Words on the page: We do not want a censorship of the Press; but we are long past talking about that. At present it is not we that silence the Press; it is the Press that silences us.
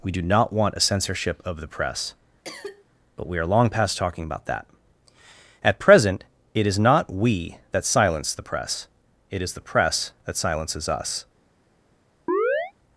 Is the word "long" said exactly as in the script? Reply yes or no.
yes